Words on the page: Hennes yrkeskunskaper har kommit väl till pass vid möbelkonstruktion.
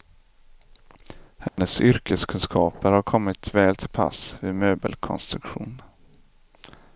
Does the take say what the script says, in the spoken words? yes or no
yes